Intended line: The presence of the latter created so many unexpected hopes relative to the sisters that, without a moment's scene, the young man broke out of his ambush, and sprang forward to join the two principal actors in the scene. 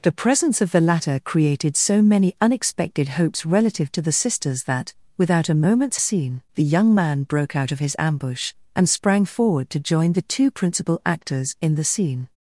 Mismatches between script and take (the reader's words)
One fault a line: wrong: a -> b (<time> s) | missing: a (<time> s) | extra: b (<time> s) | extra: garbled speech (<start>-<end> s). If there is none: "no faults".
no faults